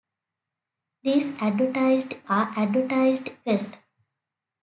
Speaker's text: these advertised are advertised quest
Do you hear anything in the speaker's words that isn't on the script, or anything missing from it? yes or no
no